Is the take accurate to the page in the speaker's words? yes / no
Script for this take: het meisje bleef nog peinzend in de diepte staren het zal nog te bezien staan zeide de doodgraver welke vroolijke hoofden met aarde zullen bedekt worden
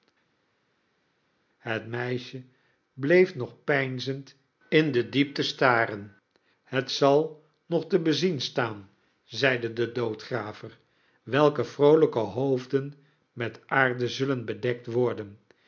yes